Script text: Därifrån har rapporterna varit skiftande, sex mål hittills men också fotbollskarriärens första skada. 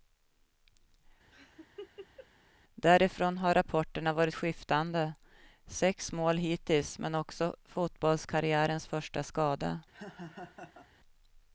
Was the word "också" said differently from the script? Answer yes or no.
no